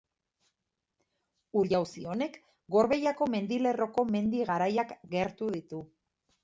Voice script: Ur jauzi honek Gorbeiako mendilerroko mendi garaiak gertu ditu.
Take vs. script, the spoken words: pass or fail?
pass